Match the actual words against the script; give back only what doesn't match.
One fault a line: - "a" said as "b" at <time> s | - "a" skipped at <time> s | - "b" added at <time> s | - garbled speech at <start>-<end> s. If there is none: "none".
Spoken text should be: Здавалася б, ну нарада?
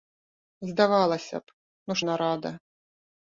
none